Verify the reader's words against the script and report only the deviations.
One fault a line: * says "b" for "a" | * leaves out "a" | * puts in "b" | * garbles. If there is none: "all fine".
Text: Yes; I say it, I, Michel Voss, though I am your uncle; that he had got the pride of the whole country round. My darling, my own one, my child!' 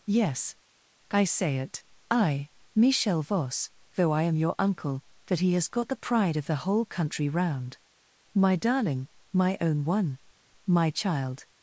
* says "has" for "had"